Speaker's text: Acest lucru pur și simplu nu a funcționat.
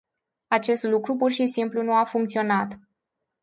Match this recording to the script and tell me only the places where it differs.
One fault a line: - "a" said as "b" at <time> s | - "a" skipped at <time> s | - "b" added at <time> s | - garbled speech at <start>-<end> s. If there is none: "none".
none